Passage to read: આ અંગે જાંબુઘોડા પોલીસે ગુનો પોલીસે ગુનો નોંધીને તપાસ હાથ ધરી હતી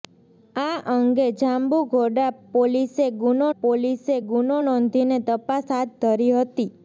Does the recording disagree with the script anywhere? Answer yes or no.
no